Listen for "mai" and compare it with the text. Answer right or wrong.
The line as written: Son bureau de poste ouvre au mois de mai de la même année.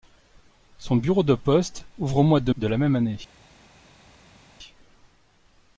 wrong